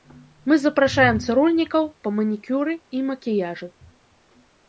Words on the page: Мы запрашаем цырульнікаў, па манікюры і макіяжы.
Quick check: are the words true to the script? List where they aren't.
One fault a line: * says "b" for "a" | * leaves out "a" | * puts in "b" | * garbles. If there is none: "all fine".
all fine